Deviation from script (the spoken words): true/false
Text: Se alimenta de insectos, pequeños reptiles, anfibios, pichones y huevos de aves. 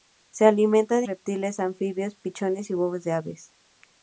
true